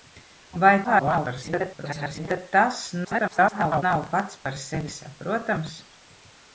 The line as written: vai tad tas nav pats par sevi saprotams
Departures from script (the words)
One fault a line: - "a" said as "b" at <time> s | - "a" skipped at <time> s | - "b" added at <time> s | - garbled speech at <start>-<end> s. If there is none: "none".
- garbled speech at 0.8-2.3 s
- garbled speech at 3.0-3.8 s